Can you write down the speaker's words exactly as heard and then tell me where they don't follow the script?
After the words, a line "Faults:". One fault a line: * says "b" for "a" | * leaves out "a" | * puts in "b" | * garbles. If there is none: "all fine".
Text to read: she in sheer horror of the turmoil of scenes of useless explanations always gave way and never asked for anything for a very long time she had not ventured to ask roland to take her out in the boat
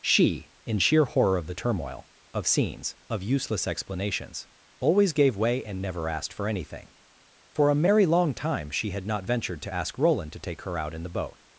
she in sheer horror of the turmoil of scenes of useless explanations always gave way and never asked for anything for a merry long time she had not ventured to ask roland to take her out in the boat
Faults:
* says "merry" for "very"